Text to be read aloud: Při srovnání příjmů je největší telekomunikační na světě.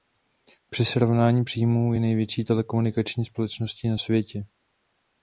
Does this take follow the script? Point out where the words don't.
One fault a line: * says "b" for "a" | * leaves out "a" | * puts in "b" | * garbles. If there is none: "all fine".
* puts in "společností"